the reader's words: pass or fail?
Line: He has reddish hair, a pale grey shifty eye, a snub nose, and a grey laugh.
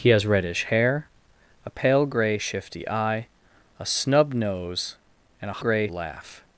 pass